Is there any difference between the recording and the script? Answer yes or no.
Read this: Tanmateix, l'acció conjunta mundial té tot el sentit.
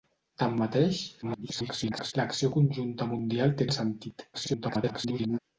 yes